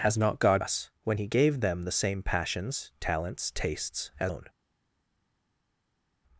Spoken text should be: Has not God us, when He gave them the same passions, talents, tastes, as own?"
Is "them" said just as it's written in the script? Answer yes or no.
yes